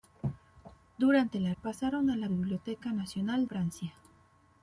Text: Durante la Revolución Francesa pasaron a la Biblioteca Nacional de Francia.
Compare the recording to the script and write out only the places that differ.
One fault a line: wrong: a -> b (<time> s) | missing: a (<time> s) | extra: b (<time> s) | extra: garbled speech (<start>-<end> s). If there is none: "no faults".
missing: Revolución Francesa (1.5 s)
missing: de (3.5 s)